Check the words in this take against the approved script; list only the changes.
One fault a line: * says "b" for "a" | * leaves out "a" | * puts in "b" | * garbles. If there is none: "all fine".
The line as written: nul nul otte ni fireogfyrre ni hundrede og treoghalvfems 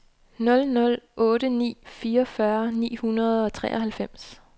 all fine